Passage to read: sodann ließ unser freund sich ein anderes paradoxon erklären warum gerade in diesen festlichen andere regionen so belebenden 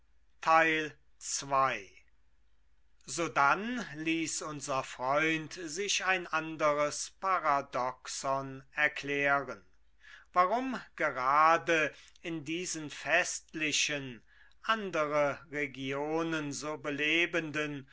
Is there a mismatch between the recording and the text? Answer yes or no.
no